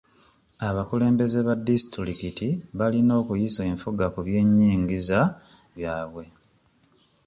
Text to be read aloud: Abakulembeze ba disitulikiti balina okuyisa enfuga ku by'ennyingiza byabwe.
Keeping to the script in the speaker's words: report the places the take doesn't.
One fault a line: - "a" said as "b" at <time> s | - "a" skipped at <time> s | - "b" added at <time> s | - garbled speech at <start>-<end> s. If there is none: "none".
none